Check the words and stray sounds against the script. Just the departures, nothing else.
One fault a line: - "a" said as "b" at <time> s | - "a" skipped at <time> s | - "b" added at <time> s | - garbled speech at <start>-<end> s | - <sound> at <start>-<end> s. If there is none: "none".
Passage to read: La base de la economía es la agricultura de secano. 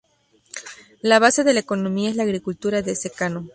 none